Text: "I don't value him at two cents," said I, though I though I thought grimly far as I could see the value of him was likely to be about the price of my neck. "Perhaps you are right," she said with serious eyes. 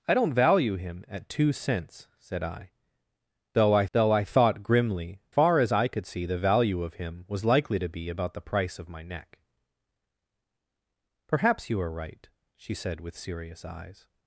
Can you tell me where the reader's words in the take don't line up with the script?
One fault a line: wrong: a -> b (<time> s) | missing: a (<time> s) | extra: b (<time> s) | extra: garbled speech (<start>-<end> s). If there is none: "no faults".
no faults